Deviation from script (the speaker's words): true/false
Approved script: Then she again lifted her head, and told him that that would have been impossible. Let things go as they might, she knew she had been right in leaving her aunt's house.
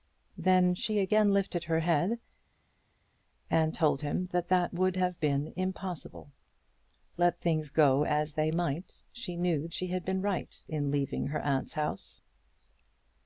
false